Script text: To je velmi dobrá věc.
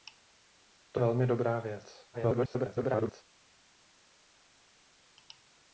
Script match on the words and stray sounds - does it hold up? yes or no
no